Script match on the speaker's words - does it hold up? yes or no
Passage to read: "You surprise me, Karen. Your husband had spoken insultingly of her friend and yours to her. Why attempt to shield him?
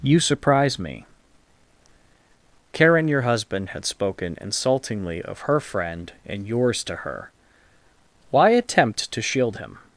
yes